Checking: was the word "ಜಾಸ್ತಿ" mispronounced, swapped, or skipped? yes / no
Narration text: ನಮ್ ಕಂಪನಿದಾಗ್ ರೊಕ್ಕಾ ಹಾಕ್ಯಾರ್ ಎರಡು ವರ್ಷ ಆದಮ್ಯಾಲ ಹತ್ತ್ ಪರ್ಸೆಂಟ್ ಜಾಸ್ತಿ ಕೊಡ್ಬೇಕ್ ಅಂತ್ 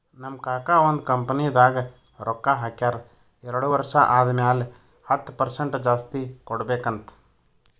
no